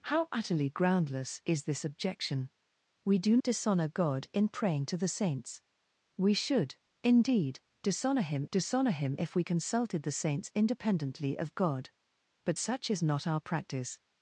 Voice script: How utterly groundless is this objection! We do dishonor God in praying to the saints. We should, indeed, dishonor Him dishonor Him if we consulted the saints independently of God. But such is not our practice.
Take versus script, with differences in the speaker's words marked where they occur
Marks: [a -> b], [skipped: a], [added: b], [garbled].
How utterly groundless is this objection! We do dishonor God in praying to the saints. We should, indeed, dishonor Him dishonor Him if we consulted the saints independently of God. But such is not our practice.